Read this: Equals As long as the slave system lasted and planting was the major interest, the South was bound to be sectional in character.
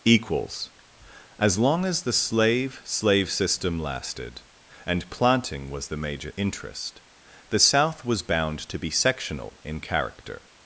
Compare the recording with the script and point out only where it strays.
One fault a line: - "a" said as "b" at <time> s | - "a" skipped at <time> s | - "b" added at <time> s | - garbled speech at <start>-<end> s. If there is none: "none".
- "slave" added at 2.8 s